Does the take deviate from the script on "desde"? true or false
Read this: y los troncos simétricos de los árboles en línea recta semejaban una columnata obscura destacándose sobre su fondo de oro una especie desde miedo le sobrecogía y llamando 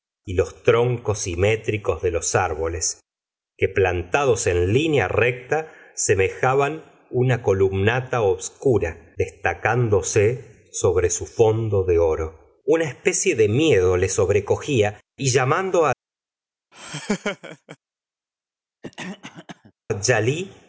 true